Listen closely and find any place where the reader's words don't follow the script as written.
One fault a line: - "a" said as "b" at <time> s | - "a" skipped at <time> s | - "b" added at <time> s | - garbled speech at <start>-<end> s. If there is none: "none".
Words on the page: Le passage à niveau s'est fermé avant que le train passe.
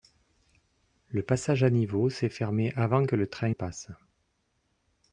none